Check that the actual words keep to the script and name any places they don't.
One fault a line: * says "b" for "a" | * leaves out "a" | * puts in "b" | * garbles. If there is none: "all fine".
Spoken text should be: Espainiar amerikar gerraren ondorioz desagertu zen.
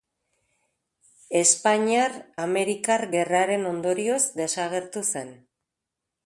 all fine